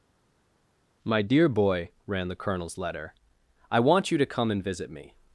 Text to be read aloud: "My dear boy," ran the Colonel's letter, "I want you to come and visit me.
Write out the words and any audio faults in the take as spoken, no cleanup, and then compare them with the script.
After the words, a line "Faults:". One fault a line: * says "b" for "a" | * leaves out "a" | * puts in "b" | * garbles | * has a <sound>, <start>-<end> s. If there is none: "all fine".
"My dear boy," ran the Colonel's letter, "I want you to come and visit me.
Faults:
all fine